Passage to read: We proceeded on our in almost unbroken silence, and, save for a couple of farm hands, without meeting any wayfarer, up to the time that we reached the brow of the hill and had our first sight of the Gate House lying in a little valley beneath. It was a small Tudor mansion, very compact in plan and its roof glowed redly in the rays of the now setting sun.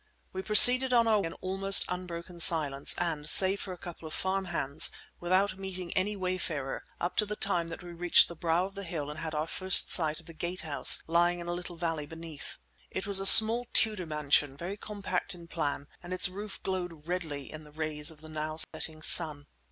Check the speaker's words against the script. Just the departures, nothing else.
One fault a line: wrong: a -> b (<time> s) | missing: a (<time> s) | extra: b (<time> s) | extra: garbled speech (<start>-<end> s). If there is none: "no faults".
no faults